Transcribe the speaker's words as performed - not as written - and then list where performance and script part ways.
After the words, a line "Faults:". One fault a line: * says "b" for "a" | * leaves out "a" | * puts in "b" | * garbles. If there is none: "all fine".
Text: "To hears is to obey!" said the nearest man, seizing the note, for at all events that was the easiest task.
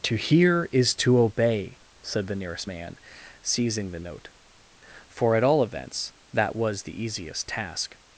"To hear is to obey!" said the nearest man, seizing the note, for at all events that was the easiest task.
Faults:
* says "hear" for "hears"